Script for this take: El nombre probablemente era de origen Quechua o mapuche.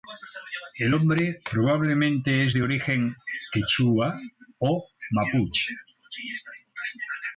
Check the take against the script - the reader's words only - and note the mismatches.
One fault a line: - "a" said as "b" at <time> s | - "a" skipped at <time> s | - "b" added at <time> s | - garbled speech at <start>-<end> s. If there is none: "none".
- "era" said as "es" at 2.4 s